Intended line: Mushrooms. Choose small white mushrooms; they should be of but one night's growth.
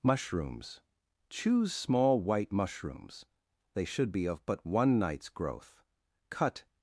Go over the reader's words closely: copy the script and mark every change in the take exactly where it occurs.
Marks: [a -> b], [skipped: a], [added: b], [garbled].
Mushrooms. Choose small white mushrooms; they should be of but one night's growth. [added: Cut]